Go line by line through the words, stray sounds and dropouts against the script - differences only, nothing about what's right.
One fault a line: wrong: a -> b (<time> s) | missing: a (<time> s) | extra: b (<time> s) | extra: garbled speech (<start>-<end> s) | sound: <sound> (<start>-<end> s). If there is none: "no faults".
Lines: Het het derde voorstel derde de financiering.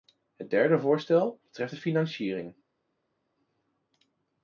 missing: het (0.5 s)
wrong: derde -> betreft (1.4 s)